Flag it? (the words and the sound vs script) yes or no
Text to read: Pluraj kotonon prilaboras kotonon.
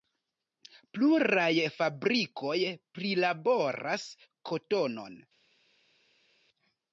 yes